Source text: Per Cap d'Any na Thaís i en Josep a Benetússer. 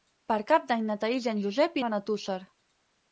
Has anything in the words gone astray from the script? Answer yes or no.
no